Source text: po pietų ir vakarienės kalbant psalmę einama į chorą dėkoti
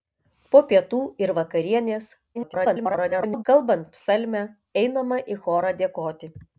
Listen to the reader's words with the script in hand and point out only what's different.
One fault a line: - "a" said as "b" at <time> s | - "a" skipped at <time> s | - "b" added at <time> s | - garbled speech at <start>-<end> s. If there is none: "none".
- garbled speech at 2.3-3.4 s